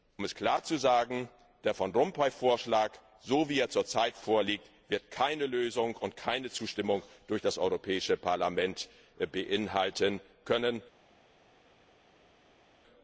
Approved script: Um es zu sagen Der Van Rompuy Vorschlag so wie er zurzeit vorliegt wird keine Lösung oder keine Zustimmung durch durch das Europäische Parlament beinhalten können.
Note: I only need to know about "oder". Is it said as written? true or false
false